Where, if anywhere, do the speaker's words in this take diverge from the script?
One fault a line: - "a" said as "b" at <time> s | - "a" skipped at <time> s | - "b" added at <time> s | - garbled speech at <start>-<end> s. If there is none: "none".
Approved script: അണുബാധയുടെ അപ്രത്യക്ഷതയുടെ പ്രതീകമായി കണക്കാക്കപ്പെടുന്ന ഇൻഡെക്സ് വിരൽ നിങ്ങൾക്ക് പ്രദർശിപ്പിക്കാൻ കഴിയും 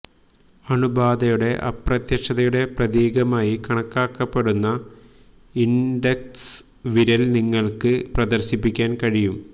none